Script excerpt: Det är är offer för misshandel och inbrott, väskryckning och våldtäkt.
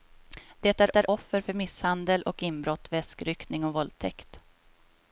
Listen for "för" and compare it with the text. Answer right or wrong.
right